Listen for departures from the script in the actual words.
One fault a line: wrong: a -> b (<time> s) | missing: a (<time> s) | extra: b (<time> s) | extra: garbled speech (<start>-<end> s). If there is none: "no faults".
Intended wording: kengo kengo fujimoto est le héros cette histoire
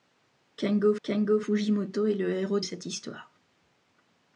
no faults